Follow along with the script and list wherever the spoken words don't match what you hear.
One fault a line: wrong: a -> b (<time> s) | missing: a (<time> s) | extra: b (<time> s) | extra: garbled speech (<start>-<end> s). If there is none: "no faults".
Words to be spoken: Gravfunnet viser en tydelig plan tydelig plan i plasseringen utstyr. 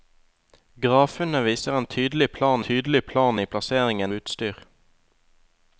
no faults